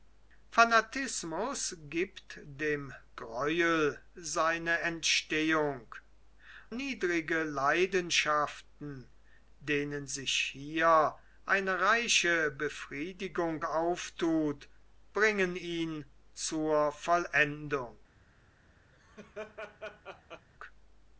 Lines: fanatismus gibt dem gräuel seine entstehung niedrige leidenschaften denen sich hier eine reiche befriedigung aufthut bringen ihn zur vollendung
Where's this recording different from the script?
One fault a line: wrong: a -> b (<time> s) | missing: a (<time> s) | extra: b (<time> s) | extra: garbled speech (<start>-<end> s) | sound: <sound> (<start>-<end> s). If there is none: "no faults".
sound: laugh (18.9-20.5 s)